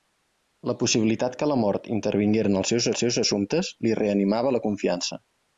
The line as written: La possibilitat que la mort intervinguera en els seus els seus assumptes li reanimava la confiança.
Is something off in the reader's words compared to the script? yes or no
no